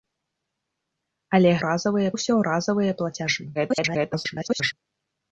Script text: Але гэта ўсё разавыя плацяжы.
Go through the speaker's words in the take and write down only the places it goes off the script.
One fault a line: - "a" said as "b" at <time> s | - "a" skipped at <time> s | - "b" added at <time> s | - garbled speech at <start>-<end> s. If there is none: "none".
- "гэта" said as "разавыя" at 1.7 s
- garbled speech at 3.5-4.7 s